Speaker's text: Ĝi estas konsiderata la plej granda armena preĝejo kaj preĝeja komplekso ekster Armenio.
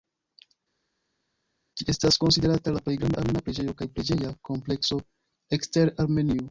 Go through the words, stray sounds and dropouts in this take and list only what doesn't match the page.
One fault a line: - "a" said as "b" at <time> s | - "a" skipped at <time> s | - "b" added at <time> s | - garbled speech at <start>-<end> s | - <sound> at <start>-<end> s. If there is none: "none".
none